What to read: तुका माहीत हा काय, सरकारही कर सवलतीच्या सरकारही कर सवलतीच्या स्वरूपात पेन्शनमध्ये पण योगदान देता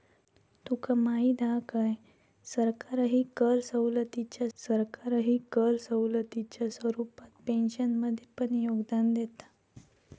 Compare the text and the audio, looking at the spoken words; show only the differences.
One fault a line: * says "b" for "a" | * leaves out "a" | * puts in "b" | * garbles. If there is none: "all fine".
all fine